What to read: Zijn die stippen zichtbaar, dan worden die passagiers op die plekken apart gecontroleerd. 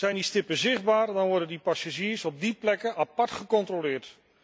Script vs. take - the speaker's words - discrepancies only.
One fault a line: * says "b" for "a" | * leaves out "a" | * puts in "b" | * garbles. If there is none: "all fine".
all fine